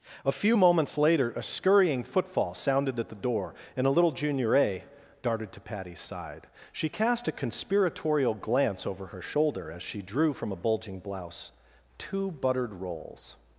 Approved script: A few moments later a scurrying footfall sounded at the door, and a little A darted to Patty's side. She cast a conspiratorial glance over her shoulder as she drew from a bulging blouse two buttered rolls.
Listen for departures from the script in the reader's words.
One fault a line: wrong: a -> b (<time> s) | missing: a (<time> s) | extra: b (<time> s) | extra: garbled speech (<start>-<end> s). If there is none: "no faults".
extra: Junior (4.1 s)